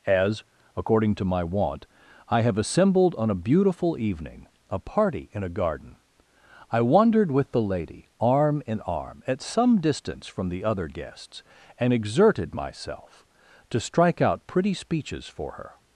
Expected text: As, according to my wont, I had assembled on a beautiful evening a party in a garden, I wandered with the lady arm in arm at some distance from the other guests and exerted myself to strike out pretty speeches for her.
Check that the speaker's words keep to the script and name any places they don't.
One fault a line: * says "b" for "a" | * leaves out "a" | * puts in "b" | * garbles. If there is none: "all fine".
* says "have" for "had"